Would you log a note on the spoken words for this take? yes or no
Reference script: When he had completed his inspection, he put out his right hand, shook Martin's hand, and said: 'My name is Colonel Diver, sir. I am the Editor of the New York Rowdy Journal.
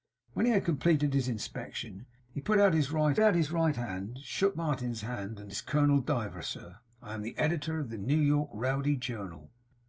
yes